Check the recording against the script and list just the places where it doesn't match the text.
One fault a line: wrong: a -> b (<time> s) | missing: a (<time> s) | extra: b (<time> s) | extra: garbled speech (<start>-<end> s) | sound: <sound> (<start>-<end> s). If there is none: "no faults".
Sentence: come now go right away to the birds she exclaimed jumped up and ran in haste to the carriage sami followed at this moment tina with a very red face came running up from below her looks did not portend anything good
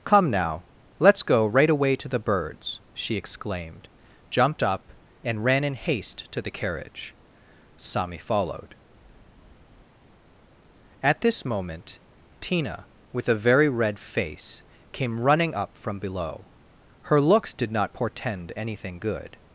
extra: let's (1.0 s)